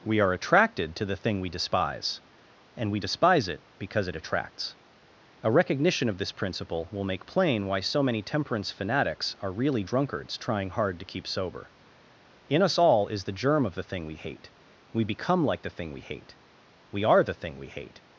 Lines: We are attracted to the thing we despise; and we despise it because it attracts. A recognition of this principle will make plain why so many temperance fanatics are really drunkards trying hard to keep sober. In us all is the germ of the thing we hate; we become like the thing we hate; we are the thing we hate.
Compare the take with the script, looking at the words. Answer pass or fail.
pass